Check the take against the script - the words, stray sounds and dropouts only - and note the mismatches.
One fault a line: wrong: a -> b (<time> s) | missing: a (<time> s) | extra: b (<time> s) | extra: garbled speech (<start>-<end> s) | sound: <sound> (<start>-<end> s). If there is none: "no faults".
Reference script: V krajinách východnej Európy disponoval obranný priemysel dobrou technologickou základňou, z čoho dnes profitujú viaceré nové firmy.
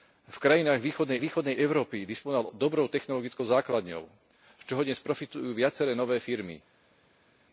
extra: východnej (1.2 s)
missing: obranný priemysel (2.5 s)